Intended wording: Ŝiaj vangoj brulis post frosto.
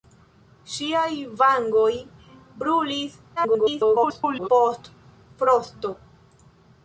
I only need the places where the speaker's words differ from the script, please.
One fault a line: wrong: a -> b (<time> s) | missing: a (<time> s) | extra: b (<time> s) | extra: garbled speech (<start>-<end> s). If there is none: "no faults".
extra: garbled speech (3.4-4.5 s)